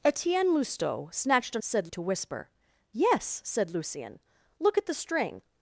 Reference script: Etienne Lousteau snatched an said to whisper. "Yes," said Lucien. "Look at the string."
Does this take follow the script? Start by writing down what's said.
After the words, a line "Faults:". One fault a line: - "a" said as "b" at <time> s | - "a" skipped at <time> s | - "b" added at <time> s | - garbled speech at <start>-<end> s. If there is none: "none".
Etienne Lousteau snatched an said to whisper. "Yes," said Lucien. "Look at the string."
Faults:
none